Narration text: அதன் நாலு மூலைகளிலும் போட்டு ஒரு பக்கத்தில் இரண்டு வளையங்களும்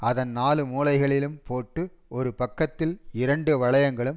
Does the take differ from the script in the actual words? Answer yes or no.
no